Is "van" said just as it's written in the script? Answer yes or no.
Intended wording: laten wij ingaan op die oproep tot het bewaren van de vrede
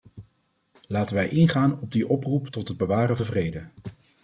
no